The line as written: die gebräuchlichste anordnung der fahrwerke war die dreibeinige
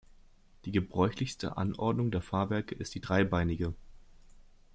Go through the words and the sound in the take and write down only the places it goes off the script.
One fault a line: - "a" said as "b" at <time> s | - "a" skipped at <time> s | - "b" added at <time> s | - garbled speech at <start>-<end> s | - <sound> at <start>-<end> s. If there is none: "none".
- "war" said as "ist" at 2.7 s